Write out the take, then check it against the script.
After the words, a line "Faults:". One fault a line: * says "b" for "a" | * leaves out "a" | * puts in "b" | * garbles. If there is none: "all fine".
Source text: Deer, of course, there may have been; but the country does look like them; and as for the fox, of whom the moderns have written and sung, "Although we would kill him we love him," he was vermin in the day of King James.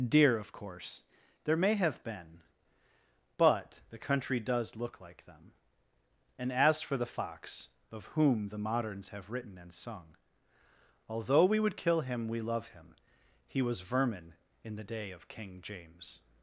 Deer, of course, there may have been; but the country does look like them; and as for the fox, of whom the moderns have written and sung, "Although we would kill him we love him," he was vermin in the day of King James.
Faults:
all fine